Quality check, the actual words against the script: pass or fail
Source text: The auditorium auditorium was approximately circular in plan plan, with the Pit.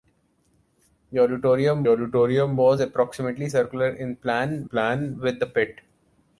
pass